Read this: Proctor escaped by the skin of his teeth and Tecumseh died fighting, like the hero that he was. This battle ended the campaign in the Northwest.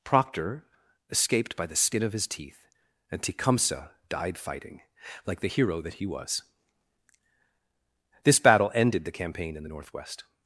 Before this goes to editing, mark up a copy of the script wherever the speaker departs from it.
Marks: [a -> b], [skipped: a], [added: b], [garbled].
Proctor escaped by the skin of his teeth and Tecumseh died fighting, like the hero that he was. This battle ended the campaign in the Northwest.